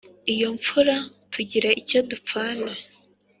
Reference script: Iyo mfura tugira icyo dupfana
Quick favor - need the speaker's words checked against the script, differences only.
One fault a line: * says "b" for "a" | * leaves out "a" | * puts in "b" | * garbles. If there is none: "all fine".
all fine